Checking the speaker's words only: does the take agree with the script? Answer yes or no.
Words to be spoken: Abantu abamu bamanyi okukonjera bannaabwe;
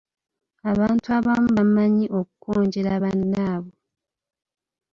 yes